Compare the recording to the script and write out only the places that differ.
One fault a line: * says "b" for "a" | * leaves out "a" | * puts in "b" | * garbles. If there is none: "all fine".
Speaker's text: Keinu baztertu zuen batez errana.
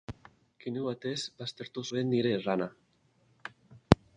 * puts in "batez"
* says "nire" for "batez"